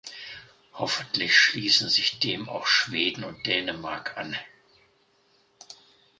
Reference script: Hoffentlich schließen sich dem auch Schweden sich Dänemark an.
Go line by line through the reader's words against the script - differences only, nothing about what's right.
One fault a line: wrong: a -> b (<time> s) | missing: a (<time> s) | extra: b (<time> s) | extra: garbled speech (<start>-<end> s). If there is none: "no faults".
wrong: sich -> und (3.2 s)